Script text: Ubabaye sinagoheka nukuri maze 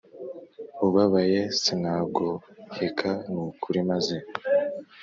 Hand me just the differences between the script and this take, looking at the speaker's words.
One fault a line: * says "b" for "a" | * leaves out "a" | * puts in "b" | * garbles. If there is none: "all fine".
all fine